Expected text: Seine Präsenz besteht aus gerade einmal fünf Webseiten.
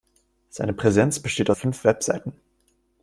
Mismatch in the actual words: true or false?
true